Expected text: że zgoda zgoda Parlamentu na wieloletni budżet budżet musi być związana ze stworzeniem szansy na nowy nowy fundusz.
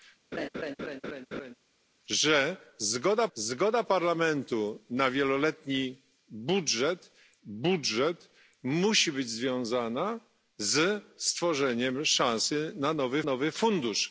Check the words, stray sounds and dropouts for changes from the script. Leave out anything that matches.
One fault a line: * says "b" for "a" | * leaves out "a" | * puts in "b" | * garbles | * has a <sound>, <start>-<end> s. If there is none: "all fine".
* has a laugh, 0.3-1.5 s